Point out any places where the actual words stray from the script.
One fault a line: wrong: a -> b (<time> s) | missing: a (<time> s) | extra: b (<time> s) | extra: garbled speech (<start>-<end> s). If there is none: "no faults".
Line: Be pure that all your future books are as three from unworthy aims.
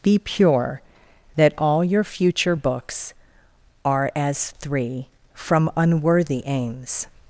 no faults